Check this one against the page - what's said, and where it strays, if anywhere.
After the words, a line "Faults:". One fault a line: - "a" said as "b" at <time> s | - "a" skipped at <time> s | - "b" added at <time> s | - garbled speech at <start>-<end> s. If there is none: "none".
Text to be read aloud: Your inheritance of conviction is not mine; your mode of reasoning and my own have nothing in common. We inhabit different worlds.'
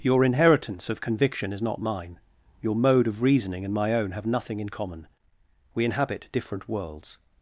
Your inheritance of conviction is not mine; your mode of reasoning and my own have nothing in common. We inhabit different worlds.'
Faults:
none